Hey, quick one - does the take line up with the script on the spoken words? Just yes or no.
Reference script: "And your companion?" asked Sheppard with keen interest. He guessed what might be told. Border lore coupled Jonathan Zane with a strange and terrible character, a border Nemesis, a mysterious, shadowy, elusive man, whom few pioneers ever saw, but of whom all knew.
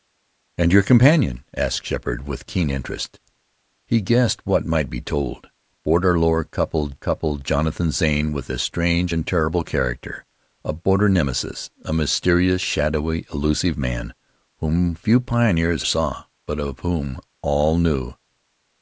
no